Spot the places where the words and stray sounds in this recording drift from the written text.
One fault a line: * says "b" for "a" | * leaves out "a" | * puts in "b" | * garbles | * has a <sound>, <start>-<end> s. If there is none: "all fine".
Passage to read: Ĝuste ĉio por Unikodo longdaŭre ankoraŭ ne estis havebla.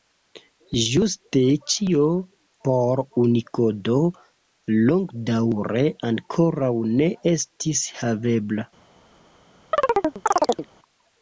* has a chirp, 9.7-10.7 s